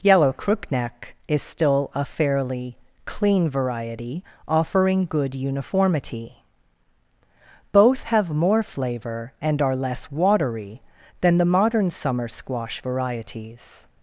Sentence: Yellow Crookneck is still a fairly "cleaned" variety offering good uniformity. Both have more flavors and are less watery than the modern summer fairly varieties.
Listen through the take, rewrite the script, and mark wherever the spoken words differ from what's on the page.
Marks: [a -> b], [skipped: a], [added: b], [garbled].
Yellow Crookneck is still a fairly ["cleaned" -> clean] variety offering good uniformity. Both have more [flavors -> flavor] and are less watery than the modern summer [fairly -> squash] varieties.